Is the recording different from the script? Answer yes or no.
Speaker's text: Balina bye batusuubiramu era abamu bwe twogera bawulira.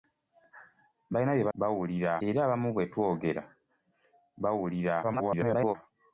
yes